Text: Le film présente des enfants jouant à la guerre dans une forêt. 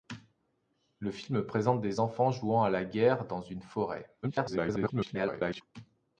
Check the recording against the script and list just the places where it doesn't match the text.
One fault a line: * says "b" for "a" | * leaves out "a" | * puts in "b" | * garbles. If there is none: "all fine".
* garbles